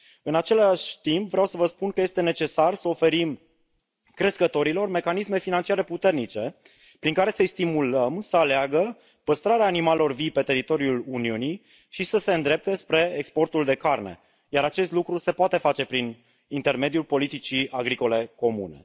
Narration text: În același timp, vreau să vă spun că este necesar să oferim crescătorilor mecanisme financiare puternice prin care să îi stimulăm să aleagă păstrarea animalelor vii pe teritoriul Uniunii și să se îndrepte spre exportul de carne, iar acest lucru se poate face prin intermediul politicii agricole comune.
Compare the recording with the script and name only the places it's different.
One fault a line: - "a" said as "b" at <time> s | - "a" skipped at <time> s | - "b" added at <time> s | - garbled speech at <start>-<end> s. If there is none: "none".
none